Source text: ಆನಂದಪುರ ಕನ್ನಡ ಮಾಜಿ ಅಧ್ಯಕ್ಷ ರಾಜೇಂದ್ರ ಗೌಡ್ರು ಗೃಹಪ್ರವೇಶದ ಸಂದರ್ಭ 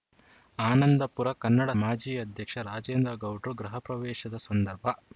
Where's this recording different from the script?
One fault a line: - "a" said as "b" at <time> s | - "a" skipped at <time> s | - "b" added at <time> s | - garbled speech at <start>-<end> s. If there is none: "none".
none